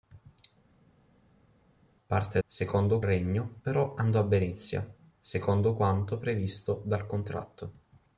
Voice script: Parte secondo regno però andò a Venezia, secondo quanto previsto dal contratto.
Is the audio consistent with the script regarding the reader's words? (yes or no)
yes